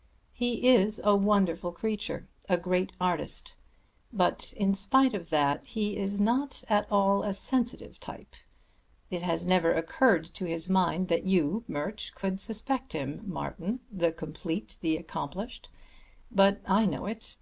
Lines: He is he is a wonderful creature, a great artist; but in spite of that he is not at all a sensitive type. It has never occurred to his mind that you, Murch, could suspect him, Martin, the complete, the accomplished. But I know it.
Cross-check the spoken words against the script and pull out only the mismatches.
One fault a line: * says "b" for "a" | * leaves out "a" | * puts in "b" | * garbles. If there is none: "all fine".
* leaves out "he is"